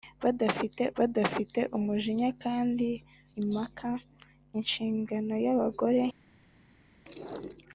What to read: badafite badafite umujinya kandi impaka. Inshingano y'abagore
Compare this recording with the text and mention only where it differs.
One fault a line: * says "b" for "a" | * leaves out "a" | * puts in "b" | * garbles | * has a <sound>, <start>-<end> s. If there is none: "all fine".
all fine